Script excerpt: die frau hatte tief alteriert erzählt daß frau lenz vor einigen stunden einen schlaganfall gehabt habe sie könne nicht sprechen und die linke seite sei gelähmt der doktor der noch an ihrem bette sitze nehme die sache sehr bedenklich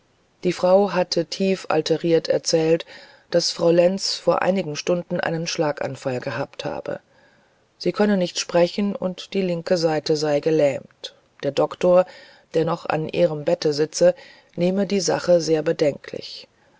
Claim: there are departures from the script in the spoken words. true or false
false